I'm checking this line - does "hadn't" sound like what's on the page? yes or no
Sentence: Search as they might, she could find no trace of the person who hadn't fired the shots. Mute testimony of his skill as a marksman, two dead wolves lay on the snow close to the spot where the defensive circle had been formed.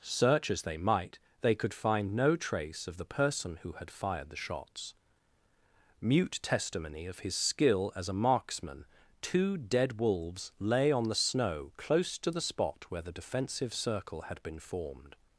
no